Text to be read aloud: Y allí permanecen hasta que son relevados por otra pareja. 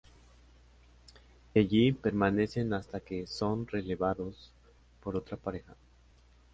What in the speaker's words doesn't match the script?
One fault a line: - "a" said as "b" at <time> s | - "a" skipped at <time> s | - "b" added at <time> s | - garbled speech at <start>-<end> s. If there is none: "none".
none